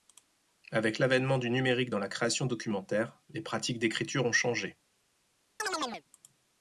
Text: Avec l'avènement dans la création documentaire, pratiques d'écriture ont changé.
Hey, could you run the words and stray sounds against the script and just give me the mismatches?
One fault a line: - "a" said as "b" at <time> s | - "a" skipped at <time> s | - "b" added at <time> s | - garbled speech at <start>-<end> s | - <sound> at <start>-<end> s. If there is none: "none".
- "du numérique" added at 1.4 s
- "les" added at 3.3 s
- chirp at 5.6-6.0 s